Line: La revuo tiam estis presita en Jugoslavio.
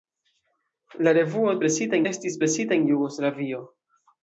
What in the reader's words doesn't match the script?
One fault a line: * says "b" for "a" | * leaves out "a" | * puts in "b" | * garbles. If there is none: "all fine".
* says "presita" for "tiam"